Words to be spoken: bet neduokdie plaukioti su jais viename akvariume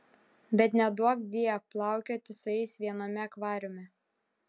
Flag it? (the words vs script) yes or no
no